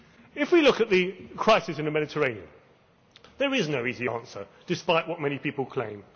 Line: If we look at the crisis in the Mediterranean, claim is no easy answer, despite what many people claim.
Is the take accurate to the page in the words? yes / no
no